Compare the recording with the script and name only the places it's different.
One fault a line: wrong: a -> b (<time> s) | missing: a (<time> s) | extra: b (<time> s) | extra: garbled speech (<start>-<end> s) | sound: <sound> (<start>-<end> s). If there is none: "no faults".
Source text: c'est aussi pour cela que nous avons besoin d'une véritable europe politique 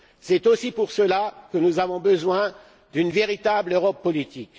no faults